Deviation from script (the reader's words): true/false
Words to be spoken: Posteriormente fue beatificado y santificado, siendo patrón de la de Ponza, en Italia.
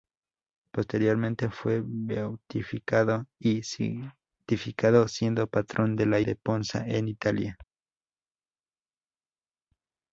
false